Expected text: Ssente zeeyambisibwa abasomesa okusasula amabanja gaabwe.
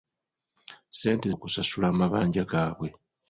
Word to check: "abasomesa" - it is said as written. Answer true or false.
false